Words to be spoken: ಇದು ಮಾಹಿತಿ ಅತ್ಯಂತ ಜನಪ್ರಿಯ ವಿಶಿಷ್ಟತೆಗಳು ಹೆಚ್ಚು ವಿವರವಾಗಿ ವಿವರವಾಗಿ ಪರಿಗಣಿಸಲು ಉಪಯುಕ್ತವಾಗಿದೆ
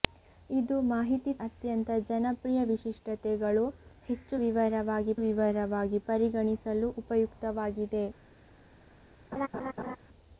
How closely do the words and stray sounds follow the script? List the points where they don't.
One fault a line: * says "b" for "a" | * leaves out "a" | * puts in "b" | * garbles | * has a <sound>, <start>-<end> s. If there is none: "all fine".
* has a laugh, 9.3-10.0 s